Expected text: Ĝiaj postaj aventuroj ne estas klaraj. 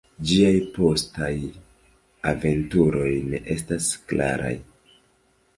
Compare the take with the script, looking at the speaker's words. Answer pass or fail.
pass